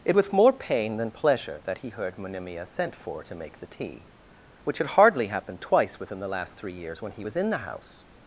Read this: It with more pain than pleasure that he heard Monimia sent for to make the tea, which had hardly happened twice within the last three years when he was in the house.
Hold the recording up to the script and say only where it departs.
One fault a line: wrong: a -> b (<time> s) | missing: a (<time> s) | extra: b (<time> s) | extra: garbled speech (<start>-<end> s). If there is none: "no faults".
no faults